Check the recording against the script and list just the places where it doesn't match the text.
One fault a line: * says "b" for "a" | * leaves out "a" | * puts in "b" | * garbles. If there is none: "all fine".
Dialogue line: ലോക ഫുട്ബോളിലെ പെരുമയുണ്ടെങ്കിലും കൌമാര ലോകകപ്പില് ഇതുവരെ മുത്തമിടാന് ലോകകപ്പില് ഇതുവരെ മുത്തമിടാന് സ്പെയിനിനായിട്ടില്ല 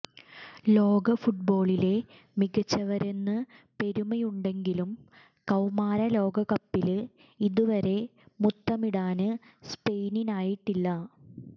* puts in "മികച്ചവരെന്ന്"
* leaves out "ലോകകപ്പില് ഇതുവരെ മുത്തമിടാന്"